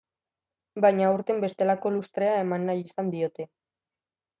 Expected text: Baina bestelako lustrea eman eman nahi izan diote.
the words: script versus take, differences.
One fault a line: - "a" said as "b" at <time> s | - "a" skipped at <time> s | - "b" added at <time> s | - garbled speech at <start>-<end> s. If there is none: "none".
- "aurten" added at 1.1 s
- "eman" skipped at 2.7 s